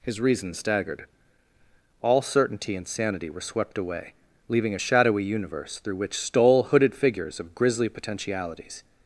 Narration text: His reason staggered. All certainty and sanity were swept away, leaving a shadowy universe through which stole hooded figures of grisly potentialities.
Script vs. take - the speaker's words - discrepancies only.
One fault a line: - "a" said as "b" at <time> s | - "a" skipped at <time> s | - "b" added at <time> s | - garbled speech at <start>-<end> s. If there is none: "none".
none